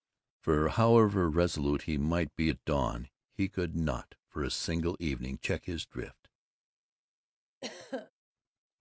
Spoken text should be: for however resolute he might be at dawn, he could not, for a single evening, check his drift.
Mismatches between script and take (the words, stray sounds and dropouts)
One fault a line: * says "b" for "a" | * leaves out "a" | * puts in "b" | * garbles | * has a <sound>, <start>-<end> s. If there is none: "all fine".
* has a throat clearing, 7.6-8.1 s